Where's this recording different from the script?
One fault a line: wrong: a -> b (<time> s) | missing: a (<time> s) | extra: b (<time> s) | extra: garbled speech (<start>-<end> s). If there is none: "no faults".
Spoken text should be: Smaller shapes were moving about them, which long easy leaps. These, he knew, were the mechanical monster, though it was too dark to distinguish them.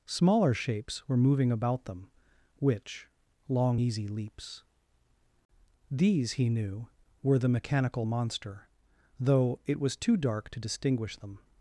no faults